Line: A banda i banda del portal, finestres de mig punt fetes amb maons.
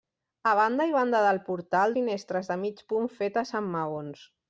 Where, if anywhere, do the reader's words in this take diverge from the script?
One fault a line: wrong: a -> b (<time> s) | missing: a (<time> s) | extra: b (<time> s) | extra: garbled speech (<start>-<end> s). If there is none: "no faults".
no faults